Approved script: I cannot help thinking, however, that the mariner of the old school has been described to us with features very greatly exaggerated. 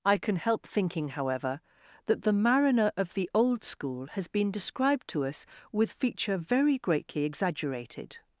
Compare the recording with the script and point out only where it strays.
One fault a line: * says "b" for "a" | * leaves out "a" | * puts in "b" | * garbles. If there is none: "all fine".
* says "can" for "cannot"
* says "feature" for "features"